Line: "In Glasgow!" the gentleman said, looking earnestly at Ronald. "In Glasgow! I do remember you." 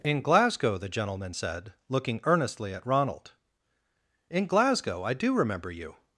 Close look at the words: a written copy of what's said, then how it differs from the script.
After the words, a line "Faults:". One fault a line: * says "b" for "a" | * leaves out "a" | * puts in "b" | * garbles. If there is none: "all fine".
"In Glasgow!" the gentleman said, looking earnestly at Ronald. "In Glasgow! I do remember you."
Faults:
all fine